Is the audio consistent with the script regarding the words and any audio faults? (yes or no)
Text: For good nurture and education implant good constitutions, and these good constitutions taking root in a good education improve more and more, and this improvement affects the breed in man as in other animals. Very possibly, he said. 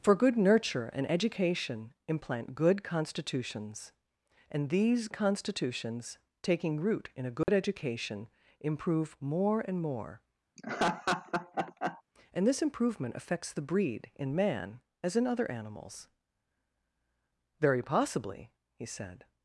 no